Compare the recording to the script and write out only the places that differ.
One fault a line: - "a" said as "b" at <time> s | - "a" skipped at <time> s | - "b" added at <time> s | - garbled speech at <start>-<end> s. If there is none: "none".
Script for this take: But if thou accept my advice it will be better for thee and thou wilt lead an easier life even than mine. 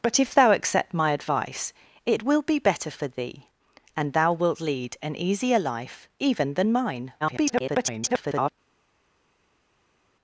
- garbled speech at 7.2-8.5 s